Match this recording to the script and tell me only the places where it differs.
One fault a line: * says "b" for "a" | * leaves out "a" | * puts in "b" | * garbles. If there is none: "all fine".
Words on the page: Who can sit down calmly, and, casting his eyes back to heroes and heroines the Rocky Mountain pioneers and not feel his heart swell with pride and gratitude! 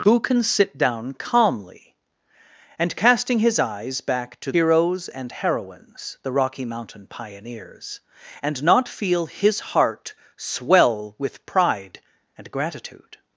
all fine